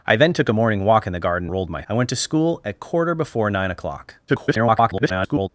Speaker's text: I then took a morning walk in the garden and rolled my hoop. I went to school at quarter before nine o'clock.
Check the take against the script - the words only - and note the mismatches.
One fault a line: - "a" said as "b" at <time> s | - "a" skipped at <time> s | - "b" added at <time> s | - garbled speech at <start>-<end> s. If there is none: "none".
- "and" skipped at 1.5 s
- "hoop" skipped at 1.8 s
- garbled speech at 4.3-5.5 s